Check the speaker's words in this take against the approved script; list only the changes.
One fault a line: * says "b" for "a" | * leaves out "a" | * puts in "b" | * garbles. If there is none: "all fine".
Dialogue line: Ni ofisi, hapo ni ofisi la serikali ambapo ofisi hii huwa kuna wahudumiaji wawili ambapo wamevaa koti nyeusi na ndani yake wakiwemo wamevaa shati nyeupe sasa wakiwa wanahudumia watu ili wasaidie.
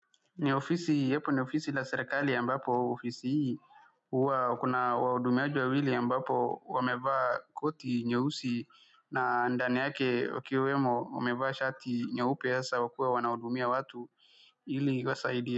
all fine